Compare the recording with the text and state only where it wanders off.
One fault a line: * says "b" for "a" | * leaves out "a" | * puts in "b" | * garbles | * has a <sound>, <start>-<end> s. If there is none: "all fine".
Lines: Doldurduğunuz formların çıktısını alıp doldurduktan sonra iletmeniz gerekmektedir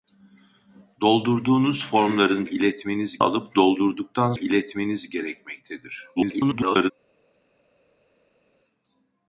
* says "iletmeniz" for "çıktısını"
* leaves out "sonra"
* garbles